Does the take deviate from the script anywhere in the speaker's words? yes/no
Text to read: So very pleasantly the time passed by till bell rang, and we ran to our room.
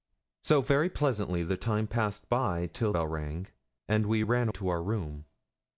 no